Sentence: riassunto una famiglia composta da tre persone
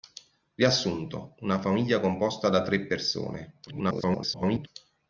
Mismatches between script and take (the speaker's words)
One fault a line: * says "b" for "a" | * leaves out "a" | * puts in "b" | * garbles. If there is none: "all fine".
* garbles